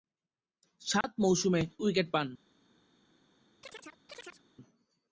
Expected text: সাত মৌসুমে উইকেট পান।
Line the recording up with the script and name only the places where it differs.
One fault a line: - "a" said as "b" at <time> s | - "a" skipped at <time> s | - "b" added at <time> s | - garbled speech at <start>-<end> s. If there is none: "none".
none